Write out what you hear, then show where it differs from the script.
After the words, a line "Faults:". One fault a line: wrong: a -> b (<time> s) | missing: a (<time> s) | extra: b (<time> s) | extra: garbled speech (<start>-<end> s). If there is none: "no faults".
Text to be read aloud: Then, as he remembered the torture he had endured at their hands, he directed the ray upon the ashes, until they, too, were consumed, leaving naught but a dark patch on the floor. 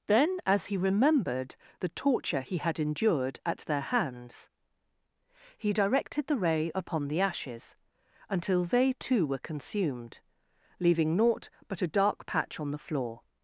Then, as he remembered the torture he had endured at their hands, he directed the ray upon the ashes, until they, too, were consumed, leaving naught but a dark patch on the floor.
Faults:
no faults